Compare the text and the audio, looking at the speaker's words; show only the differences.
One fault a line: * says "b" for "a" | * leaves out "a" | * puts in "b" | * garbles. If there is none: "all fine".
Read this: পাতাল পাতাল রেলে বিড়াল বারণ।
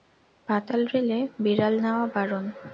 * leaves out "পাতাল"
* puts in "নেওয়া"